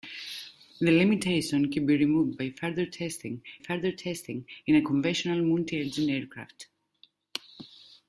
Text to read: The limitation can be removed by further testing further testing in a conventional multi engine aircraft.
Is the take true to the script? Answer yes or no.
yes